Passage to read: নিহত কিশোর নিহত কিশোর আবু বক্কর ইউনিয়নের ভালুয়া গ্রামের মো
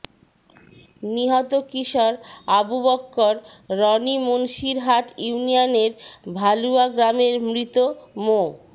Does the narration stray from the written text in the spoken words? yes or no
yes